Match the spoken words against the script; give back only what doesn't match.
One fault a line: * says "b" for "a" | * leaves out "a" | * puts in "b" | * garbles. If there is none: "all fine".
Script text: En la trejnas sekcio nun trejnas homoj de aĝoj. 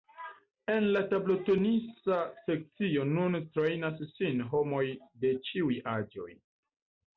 * says "tablotenisa" for "trejnas"
* puts in "sin"
* puts in "ĉiuj"